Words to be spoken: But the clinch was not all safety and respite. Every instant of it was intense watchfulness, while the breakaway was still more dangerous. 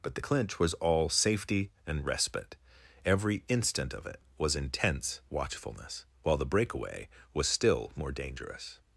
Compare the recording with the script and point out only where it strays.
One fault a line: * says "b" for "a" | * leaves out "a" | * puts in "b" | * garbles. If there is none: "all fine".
* leaves out "not"